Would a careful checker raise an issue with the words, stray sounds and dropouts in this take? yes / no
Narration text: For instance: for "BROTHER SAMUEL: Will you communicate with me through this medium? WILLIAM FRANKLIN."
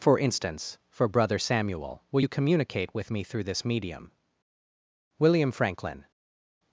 no